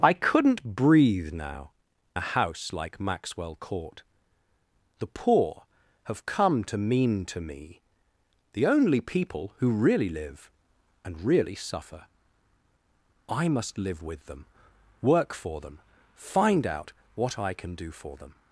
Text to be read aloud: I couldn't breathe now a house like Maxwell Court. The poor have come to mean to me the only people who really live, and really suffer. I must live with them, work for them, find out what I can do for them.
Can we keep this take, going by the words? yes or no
yes